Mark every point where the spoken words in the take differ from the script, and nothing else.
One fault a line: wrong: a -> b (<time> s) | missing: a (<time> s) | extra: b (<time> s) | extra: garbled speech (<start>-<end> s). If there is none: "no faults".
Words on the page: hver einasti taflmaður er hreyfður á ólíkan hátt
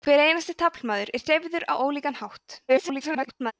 extra: garbled speech (2.7-3.5 s)